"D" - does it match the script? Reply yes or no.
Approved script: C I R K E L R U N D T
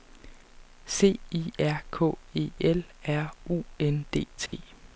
yes